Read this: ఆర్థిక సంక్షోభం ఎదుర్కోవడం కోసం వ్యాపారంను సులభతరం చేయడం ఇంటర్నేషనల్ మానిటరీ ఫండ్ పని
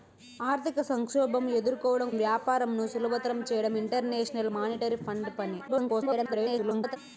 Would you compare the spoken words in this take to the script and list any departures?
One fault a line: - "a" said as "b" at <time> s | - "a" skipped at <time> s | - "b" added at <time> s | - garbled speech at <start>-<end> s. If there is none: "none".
- "కోసం" skipped at 2.1 s
- garbled speech at 5.7-7.0 s